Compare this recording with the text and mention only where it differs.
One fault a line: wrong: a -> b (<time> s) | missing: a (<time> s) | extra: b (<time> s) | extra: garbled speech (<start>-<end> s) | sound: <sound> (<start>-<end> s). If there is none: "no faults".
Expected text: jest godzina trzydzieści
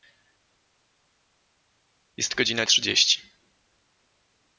no faults